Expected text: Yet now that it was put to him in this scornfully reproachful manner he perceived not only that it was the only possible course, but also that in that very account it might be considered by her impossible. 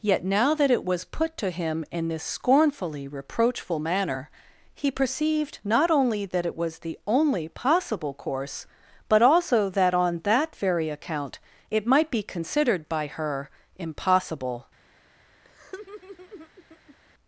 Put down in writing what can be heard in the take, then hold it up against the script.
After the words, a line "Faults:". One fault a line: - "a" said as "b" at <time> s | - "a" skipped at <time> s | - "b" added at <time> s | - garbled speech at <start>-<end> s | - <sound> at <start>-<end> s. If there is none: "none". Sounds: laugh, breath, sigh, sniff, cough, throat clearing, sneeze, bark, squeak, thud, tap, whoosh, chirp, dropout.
Yet now that it was put to him in this scornfully reproachful manner he perceived not only that it was the only possible course, but also that on that very account it might be considered by her impossible.
Faults:
- "in" said as "on" at 9.9 s
- laugh at 15.4-17.0 s